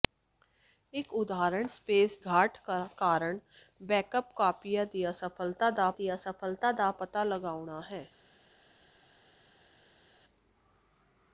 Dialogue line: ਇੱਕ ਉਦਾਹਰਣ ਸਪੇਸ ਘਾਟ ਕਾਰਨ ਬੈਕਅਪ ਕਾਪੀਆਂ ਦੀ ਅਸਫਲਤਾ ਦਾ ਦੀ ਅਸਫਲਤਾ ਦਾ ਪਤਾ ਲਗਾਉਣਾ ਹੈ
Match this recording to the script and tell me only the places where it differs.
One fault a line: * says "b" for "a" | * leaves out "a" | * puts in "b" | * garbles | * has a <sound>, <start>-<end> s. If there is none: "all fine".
all fine